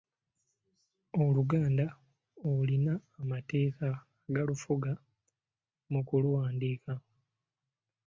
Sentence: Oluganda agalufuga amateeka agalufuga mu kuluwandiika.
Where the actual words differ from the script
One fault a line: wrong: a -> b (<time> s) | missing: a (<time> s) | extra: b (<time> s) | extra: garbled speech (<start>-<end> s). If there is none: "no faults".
wrong: agalufuga -> olina (2.5 s)